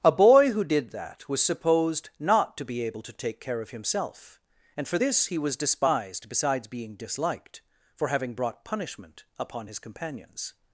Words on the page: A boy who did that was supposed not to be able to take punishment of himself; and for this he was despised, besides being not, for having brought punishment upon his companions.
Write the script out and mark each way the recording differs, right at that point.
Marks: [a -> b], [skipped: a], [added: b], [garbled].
A boy who did that was supposed not to be able to take [punishment -> care] of himself; and for this he was despised, besides being [not, -> disliked] for having brought punishment upon his companions.